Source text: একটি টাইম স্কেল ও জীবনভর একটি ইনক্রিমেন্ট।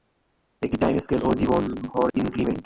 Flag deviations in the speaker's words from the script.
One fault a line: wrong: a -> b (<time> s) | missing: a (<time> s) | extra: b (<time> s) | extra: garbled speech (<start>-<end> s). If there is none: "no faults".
missing: একটি (2.1 s)